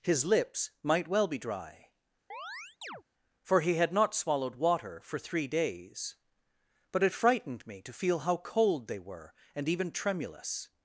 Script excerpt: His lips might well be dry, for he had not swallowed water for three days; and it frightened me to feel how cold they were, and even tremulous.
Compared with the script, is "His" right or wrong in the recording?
right